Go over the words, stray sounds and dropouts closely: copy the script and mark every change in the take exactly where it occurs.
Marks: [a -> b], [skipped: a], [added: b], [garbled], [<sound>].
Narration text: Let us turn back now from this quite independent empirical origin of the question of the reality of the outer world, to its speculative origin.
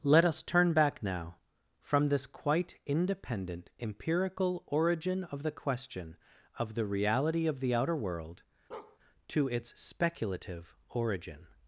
Let us turn back now from this quite independent empirical origin of the question of the reality of the outer world, [bark] to its speculative origin.